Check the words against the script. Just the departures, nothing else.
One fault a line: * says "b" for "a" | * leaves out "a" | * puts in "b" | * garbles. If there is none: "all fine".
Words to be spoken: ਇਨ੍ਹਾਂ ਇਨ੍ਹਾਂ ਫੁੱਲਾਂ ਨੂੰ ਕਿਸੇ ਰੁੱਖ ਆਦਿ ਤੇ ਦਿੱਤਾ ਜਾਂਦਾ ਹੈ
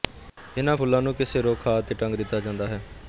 * leaves out "ਇਨ੍ਹਾਂ"
* puts in "ਟੰਗ"